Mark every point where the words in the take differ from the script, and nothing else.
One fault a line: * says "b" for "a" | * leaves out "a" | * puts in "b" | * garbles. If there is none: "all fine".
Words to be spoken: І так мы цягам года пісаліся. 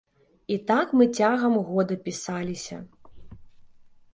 all fine